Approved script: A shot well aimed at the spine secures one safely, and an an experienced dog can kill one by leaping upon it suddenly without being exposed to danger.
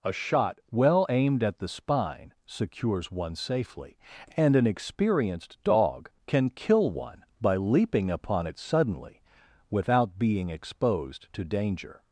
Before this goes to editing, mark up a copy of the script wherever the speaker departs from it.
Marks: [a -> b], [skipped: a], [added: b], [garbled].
A shot well aimed at the spine secures one safely, and an [skipped: an] experienced dog can kill one by leaping upon it suddenly without being exposed to danger.